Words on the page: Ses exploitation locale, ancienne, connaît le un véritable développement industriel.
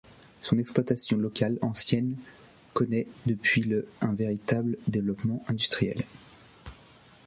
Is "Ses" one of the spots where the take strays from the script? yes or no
yes